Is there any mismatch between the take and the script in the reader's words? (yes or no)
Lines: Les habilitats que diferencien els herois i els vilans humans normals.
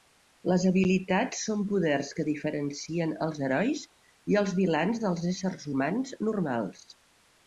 yes